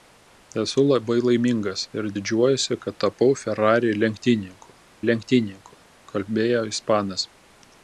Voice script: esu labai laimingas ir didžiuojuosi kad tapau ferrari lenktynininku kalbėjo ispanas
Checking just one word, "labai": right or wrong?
right